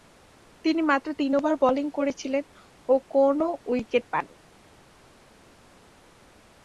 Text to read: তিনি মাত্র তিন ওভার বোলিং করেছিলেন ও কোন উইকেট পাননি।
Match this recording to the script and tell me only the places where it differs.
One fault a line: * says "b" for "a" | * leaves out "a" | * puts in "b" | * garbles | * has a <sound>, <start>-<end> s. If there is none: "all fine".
all fine